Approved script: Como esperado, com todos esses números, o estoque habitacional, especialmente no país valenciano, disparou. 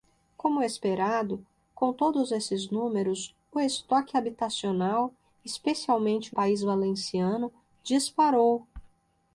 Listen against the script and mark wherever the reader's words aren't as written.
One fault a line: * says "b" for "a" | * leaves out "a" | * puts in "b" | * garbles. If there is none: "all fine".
* leaves out "no"